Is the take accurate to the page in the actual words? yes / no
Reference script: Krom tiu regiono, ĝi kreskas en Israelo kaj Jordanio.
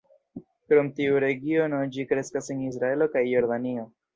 yes